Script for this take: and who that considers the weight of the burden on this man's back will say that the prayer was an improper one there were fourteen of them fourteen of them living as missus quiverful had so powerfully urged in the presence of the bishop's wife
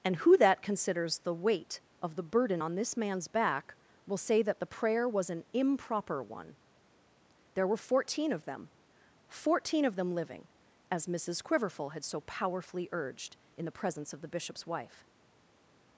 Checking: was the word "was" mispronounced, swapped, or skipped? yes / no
no